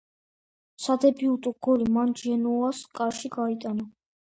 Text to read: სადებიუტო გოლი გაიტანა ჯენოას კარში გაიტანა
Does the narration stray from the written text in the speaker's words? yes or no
yes